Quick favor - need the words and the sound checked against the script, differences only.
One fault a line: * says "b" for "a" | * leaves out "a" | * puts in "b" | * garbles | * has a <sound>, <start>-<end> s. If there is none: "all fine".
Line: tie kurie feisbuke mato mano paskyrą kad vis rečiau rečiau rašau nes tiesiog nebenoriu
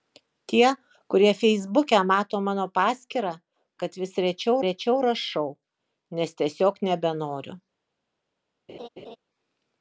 * has a laugh, 8.7-9.2 s